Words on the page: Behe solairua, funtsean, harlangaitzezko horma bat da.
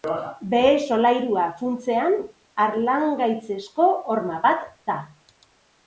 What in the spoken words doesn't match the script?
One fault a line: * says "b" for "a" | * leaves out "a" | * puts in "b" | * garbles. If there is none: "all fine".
all fine